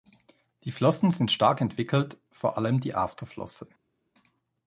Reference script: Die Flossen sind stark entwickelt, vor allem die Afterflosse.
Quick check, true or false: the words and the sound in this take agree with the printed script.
true